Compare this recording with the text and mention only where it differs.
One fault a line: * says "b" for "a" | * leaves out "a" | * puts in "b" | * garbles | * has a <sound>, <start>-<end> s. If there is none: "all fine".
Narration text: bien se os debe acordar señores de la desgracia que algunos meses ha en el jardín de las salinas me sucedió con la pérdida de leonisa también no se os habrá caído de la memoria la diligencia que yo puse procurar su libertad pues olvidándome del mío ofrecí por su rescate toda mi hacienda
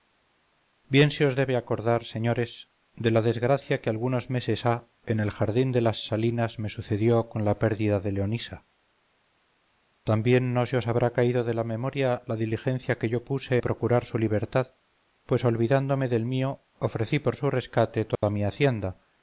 * has a dropout, 18.1-18.2 s